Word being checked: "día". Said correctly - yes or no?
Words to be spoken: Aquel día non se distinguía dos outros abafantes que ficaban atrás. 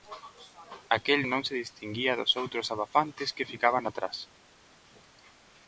no